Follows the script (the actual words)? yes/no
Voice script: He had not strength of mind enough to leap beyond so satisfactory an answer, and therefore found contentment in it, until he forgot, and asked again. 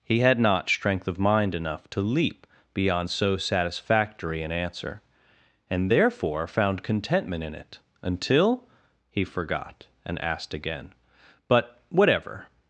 no